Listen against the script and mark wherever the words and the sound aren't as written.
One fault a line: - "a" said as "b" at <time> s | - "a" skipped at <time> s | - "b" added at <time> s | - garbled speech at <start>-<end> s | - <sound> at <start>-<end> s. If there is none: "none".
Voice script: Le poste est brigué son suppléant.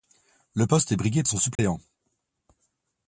- dropout at 1.5-1.6 s